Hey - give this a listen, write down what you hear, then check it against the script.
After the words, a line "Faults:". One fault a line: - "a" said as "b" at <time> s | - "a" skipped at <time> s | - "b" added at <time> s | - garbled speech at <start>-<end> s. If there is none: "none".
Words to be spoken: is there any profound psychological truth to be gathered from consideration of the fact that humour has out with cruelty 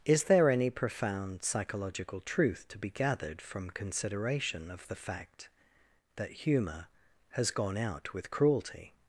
is there any profound psychological truth to be gathered from consideration of the fact that humour has gone out with cruelty
Faults:
- "gone" added at 7.5 s